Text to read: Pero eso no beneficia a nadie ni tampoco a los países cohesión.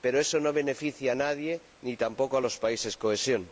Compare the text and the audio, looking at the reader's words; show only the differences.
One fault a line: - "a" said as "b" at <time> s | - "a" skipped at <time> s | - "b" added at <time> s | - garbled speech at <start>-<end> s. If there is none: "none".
none